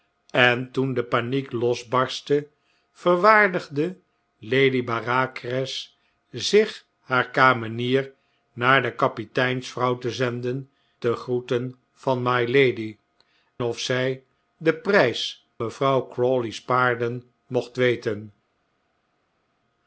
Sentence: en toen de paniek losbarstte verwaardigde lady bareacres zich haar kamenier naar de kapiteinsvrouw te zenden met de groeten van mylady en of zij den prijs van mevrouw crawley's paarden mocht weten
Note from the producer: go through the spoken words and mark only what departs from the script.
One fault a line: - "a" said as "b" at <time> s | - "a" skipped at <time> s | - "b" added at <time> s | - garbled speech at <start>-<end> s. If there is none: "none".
- "met" skipped at 10.7 s
- "en" skipped at 13.0 s
- "van" skipped at 15.5 s